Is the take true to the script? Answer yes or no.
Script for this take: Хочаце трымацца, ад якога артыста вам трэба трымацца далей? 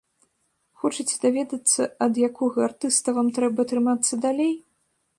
no